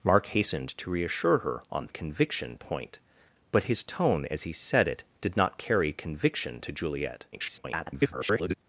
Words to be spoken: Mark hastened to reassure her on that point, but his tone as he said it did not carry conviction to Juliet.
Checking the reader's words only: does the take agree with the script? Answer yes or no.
no